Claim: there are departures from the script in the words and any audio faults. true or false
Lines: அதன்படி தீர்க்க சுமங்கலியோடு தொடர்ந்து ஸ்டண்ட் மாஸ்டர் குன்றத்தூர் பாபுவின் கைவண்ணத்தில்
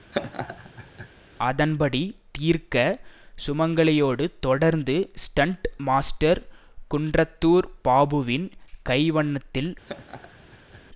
true